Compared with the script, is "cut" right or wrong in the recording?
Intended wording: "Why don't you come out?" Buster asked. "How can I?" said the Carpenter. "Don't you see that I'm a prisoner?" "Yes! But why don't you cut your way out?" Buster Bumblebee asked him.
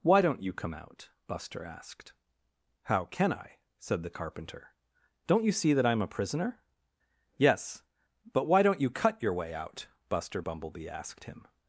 right